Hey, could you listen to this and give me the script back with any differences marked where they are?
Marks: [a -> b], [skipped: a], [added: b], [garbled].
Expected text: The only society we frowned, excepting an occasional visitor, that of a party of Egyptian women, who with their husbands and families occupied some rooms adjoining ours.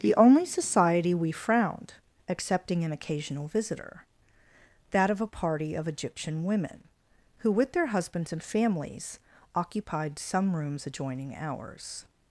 The only society we frowned, excepting an occasional visitor, that of a party of Egyptian women, who with their husbands and families occupied some rooms adjoining ours.